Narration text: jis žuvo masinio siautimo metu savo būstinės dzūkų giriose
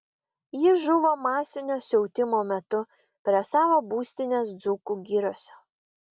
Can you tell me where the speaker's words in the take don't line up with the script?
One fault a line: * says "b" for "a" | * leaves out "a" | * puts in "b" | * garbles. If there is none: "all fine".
* puts in "prie"